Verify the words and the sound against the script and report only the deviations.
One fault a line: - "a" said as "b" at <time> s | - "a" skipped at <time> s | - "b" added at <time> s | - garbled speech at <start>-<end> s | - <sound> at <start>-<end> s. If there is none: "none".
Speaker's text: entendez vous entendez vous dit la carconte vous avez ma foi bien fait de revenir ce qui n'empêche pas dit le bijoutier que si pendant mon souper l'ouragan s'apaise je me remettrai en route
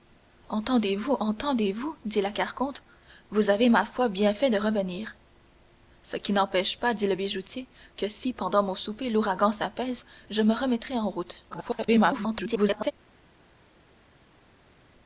- garbled speech at 11.5-12.9 s